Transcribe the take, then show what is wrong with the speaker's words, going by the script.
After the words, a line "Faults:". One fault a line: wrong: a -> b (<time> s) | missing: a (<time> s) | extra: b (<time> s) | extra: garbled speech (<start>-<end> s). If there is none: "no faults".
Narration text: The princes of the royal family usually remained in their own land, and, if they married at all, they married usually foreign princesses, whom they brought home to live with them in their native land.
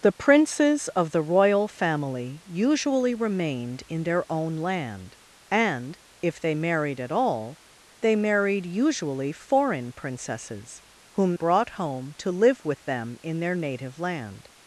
The princes of the royal family usually remained in their own land, and, if they married at all, they married usually foreign princesses, whom brought home to live with them in their native land.
Faults:
missing: they (11.3 s)